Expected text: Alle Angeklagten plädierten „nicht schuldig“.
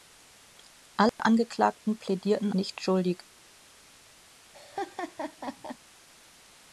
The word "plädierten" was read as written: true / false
true